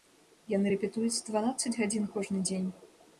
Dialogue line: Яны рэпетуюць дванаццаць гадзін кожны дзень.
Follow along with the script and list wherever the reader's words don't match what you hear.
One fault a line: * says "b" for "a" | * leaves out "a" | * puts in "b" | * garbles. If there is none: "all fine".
all fine